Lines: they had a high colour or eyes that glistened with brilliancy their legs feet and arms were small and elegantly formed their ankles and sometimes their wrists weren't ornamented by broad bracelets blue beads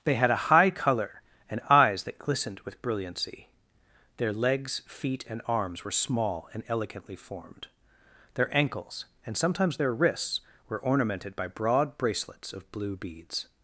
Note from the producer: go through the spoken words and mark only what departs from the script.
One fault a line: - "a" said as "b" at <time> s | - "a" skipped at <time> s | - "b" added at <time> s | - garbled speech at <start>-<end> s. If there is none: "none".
- "or" said as "and" at 1.5 s
- "weren't" said as "were" at 10.7 s
- "of" added at 12.5 s